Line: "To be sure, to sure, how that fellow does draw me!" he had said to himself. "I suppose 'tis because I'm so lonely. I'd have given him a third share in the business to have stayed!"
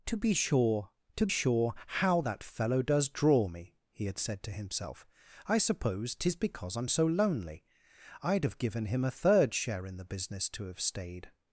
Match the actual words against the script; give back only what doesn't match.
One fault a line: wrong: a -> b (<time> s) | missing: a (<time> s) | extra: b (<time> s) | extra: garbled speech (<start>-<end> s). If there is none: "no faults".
no faults